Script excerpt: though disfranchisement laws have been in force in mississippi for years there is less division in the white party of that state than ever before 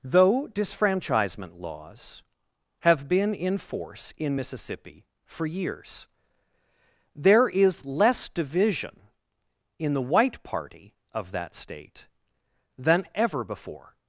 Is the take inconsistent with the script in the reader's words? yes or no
no